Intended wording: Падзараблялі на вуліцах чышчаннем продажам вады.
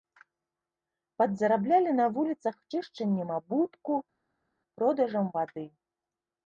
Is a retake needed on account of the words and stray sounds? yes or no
yes